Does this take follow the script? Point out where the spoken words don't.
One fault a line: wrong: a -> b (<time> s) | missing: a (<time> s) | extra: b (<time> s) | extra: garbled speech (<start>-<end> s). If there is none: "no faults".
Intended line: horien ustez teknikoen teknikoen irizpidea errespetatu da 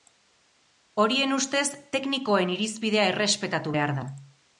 missing: teknikoen (2.5 s)
extra: behar (3.7 s)